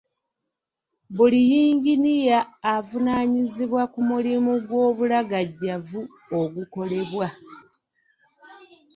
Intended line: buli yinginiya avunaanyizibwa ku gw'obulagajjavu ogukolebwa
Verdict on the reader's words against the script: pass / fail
fail